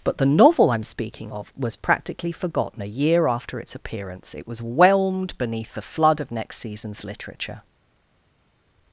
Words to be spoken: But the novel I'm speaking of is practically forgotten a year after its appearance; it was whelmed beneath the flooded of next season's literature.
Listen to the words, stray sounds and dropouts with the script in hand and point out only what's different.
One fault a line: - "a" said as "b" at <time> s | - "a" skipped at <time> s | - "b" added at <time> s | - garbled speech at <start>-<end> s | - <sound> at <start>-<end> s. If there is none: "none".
- "is" said as "was" at 1.6 s
- "flooded" said as "flood" at 5.8 s